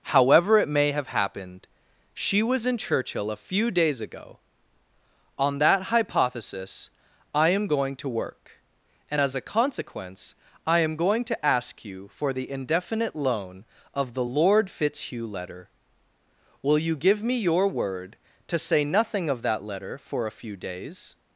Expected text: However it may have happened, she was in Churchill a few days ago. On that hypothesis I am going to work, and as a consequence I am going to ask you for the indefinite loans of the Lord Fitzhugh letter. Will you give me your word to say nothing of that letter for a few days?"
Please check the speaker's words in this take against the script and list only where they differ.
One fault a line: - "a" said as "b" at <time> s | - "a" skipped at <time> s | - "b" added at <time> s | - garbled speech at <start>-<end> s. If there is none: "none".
- "loans" said as "loan" at 13.1 s